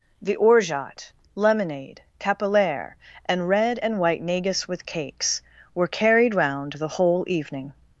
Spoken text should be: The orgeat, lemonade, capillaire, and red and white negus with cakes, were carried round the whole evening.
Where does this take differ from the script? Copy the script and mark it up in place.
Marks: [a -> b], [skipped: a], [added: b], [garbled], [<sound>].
The orgeat, lemonade, capillaire, and red and white negus with cakes, were carried round the whole evening.